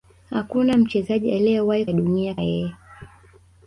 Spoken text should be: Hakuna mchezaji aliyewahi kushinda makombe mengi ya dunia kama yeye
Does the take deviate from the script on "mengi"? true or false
true